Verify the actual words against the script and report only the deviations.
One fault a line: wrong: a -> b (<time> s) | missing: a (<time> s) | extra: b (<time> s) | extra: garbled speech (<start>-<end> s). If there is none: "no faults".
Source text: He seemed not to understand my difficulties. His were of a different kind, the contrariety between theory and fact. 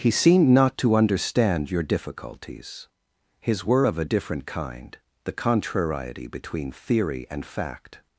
wrong: my -> your (1.7 s)